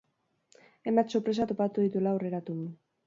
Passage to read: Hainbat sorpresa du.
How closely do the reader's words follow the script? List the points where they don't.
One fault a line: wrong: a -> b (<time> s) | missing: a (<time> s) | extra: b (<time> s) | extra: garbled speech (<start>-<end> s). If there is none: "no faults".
extra: topatu dituela aurreratu (1.5 s)